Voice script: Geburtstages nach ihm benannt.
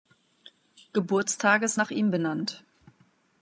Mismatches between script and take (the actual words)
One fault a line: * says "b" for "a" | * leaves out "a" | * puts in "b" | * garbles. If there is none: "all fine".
all fine